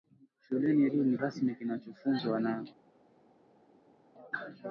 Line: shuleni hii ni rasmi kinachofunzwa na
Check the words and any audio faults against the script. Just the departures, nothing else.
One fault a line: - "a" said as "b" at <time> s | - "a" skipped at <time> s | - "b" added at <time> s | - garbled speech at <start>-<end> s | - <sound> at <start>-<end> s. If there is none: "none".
none